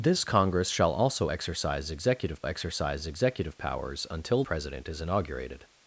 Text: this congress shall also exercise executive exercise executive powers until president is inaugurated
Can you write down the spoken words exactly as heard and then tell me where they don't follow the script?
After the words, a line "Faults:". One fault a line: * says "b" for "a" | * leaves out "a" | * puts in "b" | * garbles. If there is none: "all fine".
this congress shall also exercise executive exercise executive powers until president is inaugurated
Faults:
all fine